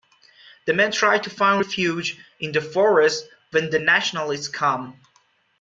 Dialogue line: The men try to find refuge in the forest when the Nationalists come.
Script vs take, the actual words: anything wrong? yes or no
no